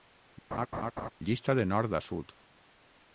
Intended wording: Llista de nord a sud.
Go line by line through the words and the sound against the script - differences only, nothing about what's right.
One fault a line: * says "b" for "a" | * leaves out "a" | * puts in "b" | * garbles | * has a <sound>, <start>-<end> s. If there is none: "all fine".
* has a laugh, 0.5-1.1 s